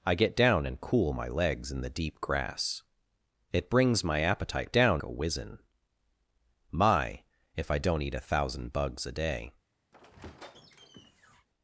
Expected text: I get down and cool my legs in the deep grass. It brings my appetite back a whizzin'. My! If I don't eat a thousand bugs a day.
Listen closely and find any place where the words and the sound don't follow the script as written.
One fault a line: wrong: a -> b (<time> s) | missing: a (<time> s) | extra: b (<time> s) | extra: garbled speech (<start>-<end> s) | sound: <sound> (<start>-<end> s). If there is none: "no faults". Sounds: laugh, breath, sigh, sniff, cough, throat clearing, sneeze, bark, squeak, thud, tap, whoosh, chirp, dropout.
wrong: back -> down (4.7 s)
sound: squeak (9.9-11.5 s)